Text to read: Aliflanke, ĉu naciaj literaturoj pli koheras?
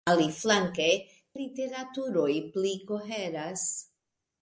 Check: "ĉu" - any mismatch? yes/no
yes